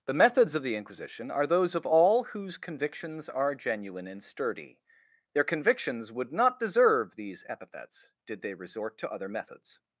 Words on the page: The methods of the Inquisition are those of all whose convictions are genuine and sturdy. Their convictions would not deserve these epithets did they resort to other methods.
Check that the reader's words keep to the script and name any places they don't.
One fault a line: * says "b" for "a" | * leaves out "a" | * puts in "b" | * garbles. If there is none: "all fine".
all fine